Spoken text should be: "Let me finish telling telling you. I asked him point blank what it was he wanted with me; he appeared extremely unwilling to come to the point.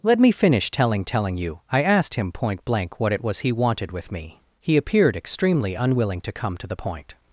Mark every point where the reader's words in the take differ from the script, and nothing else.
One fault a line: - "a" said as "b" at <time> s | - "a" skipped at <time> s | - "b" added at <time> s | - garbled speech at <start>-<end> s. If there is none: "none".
none